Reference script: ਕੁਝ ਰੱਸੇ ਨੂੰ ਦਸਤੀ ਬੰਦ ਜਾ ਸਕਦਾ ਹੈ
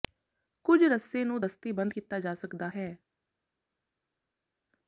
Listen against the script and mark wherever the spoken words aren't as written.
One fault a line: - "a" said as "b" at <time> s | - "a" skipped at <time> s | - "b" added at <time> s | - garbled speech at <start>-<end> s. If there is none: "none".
- "ਕੀਤਾ" added at 1.9 s